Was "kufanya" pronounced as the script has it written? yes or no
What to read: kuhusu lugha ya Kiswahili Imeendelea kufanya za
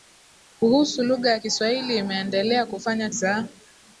yes